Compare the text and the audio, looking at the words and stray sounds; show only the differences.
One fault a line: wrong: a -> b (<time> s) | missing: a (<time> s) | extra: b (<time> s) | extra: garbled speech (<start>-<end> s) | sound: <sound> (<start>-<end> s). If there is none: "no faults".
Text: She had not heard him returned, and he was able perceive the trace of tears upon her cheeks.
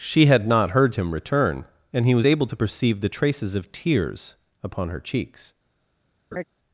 wrong: returned -> return (1.1 s)
extra: to (2.4 s)
wrong: trace -> traces (3.1 s)
sound: laugh (6.3-6.4 s)